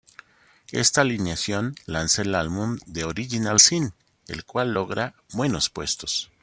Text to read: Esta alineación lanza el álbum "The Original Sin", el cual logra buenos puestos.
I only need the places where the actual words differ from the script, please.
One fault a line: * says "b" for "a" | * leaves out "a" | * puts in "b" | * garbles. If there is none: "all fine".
all fine